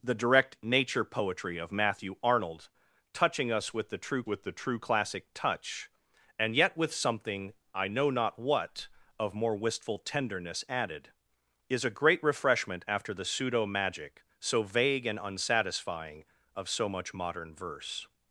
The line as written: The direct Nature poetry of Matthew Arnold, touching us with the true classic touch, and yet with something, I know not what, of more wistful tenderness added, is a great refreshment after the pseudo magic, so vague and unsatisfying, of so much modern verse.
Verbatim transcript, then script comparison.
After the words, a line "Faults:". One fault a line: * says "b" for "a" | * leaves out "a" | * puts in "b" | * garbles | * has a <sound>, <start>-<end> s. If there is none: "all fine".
The direct Nature poetry of Matthew Arnold, touching us with the true with the true classic touch, and yet with something, I know not what, of more wistful tenderness added, is a great refreshment after the pseudo magic, so vague and unsatisfying, of so much modern verse.
Faults:
* puts in "with the true"